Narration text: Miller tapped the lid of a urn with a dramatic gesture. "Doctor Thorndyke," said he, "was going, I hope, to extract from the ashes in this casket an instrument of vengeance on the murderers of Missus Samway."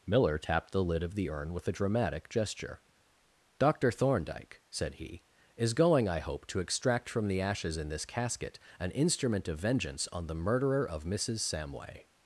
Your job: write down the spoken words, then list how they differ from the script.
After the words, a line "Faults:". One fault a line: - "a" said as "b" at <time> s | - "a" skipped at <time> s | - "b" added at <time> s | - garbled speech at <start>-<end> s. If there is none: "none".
Miller tapped the lid of the urn with a dramatic gesture. "Doctor Thorndyke," said he, "is going, I hope, to extract from the ashes in this casket an instrument of vengeance on the murderer of Missus Samway."
Faults:
- "a" said as "the" at 1.1 s
- "was" said as "is" at 5.5 s
- "murderers" said as "murderer" at 10.3 s